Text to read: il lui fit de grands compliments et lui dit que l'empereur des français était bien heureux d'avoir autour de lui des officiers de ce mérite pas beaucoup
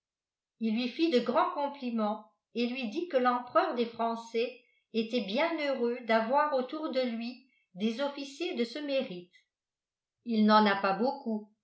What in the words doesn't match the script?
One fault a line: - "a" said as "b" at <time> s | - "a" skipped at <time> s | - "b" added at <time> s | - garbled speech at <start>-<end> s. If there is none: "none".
- "il n'en a" added at 10.2 s